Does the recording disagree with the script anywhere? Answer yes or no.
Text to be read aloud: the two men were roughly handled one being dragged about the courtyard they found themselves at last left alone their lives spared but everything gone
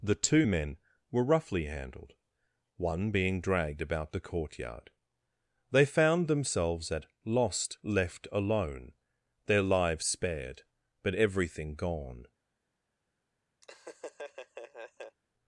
yes